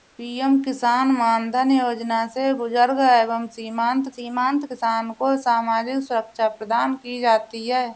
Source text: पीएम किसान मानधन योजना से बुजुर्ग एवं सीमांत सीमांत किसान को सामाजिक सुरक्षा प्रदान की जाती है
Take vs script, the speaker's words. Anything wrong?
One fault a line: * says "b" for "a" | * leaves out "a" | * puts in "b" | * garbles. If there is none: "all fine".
all fine